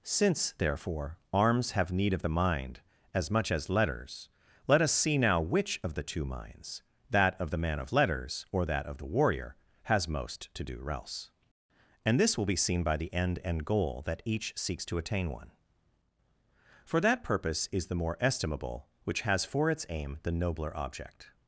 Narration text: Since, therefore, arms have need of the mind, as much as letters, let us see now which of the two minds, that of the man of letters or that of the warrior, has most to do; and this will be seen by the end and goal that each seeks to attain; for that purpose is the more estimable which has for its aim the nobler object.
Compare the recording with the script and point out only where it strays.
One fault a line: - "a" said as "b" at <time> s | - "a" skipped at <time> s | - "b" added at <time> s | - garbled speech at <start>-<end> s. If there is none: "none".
- "else" added at 10.9 s
- "one" added at 15.3 s